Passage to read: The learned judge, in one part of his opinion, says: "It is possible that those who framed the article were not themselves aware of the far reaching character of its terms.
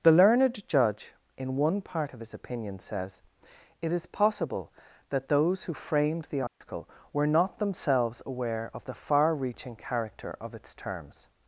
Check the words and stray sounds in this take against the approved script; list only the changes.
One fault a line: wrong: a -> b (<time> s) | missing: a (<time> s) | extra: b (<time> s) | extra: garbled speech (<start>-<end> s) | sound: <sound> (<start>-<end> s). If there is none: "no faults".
sound: dropout (6.5-6.6 s)